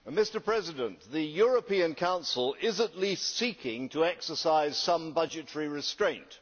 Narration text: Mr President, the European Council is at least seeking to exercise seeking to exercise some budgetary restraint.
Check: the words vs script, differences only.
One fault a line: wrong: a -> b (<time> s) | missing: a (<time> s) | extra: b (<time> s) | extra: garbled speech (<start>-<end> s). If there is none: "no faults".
missing: seeking to exercise (4.8 s)